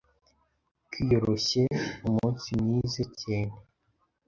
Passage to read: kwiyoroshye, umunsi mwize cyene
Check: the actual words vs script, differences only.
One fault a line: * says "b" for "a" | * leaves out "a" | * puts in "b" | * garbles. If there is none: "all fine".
all fine